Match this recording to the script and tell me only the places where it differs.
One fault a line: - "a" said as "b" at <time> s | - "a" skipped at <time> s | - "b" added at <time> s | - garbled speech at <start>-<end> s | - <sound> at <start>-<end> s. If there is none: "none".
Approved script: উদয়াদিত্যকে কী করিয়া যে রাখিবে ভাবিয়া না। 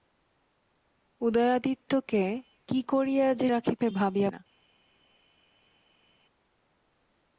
none